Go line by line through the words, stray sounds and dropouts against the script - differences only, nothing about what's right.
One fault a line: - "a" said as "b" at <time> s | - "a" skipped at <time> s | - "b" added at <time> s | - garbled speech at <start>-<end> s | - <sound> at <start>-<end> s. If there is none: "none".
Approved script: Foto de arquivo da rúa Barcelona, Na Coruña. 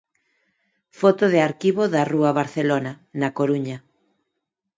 none